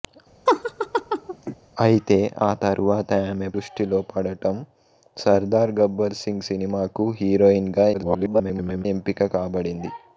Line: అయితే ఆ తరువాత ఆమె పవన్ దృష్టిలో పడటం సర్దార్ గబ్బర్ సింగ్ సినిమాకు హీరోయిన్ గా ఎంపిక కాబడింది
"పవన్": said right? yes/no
no